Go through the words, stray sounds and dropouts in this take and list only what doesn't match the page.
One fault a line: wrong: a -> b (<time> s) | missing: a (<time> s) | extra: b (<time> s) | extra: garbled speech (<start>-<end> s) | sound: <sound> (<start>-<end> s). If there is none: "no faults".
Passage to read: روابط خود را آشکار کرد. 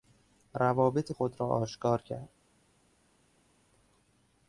no faults